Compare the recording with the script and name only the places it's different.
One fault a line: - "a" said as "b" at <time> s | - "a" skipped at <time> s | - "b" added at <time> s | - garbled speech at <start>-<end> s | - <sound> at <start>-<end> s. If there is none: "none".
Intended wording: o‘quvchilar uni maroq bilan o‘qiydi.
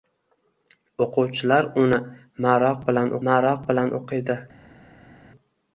- "maroq bilan" added at 3.3 s